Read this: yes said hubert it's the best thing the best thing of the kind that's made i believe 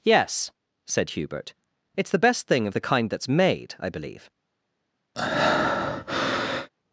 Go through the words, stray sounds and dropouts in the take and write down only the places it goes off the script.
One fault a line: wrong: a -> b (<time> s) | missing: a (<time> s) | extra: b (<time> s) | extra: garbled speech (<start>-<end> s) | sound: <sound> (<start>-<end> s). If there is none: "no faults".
missing: the best thing (2.6 s)
sound: breath (5.1-6.7 s)